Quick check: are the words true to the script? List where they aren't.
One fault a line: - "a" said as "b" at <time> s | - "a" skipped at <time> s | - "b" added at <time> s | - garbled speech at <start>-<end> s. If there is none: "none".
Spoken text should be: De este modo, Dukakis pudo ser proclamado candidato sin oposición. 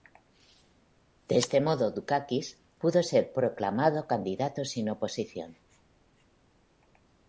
none